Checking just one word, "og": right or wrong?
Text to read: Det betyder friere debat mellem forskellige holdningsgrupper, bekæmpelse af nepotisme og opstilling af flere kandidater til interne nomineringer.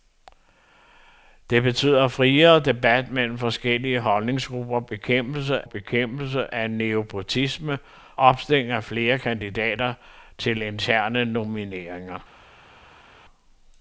wrong